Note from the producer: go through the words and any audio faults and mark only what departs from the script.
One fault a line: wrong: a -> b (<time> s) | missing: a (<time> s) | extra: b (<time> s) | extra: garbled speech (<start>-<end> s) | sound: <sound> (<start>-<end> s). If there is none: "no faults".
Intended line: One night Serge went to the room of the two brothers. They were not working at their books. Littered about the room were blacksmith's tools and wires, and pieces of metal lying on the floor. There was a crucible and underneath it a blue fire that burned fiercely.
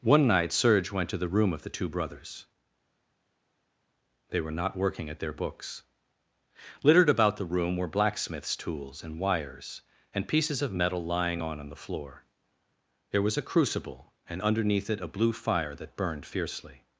extra: on (11.6 s)